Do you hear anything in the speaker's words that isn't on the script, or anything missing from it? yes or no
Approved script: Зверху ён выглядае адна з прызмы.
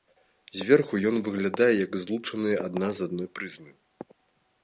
yes